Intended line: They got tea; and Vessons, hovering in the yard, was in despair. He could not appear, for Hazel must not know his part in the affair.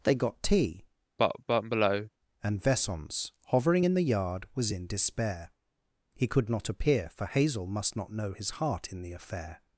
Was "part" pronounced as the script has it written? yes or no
no